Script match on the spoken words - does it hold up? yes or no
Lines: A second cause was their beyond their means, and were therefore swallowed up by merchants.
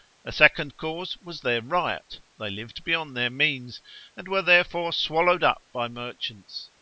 no